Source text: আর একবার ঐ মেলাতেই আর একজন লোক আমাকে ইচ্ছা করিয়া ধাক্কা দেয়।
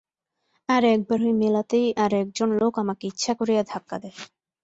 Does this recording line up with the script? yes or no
yes